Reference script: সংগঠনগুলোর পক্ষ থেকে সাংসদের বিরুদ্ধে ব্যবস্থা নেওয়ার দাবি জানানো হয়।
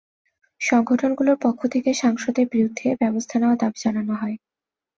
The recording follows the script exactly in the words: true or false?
true